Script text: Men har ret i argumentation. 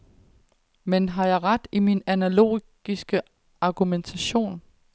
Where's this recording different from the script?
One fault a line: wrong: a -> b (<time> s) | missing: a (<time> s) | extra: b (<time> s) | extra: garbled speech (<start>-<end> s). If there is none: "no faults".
extra: jeg (1.2 s)
extra: min analogiske (1.8 s)